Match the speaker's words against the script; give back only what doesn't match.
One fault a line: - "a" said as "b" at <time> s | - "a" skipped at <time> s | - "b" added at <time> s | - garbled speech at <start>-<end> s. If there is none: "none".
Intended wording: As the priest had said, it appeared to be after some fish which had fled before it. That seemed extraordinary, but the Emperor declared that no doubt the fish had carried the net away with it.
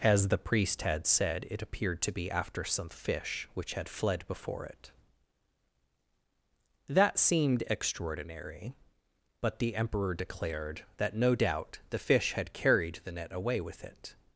none